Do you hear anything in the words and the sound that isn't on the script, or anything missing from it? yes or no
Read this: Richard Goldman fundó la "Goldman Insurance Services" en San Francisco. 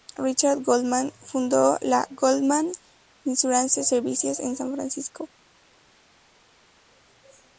no